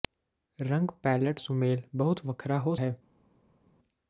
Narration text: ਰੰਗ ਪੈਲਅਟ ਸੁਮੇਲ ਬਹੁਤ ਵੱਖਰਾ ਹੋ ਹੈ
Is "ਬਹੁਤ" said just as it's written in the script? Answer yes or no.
yes